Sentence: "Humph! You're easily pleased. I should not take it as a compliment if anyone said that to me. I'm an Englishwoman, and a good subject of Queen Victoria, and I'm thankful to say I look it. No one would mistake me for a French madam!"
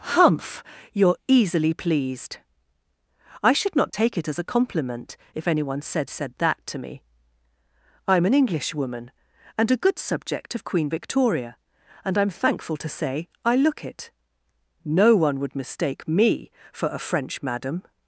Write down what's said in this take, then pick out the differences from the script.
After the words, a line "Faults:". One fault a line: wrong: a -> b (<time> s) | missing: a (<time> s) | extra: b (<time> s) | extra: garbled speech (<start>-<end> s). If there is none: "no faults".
"Humph! You're easily pleased. I should not take it as a compliment if anyone said said that to me. I'm an Englishwoman, and a good subject of Queen Victoria, and I'm thankful to say I look it. No one would mistake me for a French madam!"
Faults:
extra: said (6.1 s)